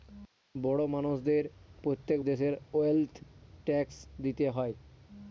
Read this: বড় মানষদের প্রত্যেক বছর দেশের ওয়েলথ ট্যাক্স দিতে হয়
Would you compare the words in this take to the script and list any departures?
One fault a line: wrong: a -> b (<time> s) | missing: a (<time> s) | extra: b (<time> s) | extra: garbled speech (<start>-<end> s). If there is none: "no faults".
missing: বছর (2.2 s)